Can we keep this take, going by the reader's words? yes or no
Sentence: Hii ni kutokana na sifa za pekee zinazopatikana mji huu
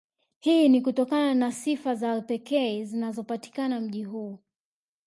yes